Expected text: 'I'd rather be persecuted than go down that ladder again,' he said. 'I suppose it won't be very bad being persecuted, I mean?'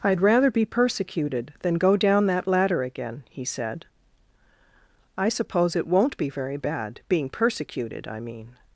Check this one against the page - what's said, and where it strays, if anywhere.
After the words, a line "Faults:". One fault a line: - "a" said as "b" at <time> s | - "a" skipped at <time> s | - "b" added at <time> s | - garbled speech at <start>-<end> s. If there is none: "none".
'I'd rather be persecuted than go down that ladder again,' he said. 'I suppose it won't be very bad being persecuted, I mean?'
Faults:
none